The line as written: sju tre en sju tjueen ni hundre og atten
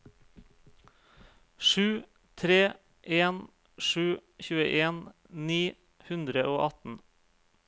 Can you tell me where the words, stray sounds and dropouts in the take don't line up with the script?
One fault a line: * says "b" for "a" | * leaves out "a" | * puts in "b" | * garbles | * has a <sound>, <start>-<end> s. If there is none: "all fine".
all fine